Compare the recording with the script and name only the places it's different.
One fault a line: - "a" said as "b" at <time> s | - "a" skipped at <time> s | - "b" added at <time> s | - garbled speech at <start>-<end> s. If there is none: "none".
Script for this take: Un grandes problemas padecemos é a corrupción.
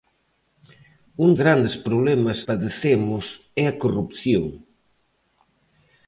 none